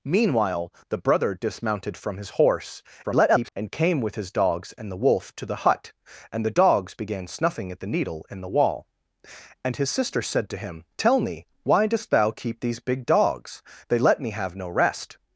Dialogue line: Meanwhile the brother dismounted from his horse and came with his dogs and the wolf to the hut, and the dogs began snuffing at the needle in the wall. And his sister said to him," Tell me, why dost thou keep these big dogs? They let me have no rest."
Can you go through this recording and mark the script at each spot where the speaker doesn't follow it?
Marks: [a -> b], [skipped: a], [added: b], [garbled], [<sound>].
Meanwhile the brother dismounted from his horse [garbled] and came with his dogs and the wolf to the hut, and the dogs began snuffing at the needle in the wall. And his sister said to him," Tell me, why dost thou keep these big dogs? They let me have no rest."